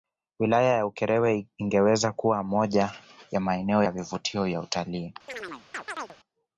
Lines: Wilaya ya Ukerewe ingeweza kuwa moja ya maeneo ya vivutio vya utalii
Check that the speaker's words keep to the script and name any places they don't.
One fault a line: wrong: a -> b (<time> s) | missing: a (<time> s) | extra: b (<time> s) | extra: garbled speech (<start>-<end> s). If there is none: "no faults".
no faults